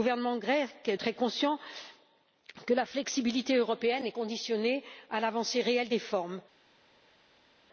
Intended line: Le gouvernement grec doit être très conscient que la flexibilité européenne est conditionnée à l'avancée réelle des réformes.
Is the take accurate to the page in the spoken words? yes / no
no